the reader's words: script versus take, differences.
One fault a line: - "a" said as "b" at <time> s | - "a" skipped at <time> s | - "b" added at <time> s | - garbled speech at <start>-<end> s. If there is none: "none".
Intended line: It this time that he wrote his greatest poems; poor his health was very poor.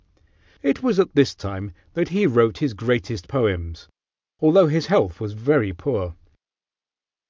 - "was at" added at 0.8 s
- "poor" said as "although" at 4.4 s